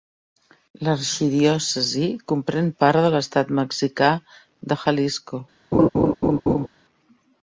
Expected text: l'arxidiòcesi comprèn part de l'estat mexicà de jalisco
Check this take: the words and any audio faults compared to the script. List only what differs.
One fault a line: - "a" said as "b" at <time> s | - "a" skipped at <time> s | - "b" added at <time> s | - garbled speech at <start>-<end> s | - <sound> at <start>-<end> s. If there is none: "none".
- laugh at 5.7-6.7 s